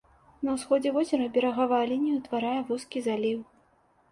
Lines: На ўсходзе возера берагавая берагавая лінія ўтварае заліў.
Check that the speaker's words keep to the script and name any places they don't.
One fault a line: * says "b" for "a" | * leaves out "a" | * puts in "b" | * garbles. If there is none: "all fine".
* leaves out "берагавая"
* puts in "вузкі"